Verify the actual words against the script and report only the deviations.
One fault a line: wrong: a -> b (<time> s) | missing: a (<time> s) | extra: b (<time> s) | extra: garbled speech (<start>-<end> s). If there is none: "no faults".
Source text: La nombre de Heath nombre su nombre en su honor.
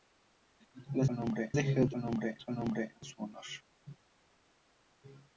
no faults